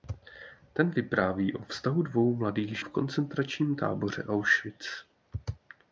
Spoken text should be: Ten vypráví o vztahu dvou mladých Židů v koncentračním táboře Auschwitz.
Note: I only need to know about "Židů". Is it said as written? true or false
false